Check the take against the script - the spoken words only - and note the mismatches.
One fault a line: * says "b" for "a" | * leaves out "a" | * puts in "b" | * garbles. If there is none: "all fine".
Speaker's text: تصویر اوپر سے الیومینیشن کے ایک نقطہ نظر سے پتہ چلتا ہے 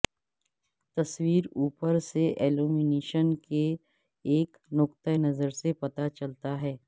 all fine